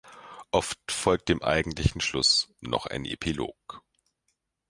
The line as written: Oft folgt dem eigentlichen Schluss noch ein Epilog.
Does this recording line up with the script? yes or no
yes